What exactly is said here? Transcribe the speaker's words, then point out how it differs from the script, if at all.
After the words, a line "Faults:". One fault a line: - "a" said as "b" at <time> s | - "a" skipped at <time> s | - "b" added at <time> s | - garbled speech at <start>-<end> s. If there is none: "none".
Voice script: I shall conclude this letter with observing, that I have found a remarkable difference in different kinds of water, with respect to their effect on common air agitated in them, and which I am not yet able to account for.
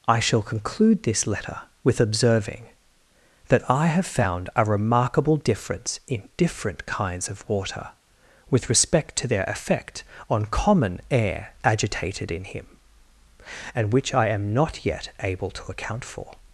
I shall conclude this letter with observing, that I have found a remarkable difference in different kinds of water, with respect to their effect on common air agitated in him, and which I am not yet able to account for.
Faults:
- "them" said as "him" at 12.4 s